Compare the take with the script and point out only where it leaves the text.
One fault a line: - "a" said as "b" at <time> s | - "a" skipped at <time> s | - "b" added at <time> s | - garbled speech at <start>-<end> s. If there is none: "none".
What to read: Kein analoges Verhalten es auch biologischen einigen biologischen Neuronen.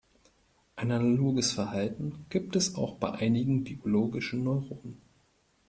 - "Kein" said as "Ein" at 0.8 s
- "gibt" added at 2.3 s
- "biologischen" said as "bei" at 2.9 s